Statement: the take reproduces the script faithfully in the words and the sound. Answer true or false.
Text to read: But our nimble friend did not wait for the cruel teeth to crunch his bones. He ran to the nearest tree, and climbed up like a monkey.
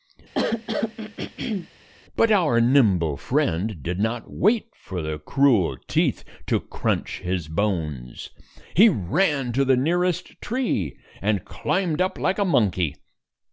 false